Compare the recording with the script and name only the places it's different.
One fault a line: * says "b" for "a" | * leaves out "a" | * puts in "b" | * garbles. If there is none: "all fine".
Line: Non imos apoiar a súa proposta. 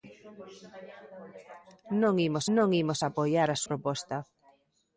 * puts in "non imos"
* leaves out "súa"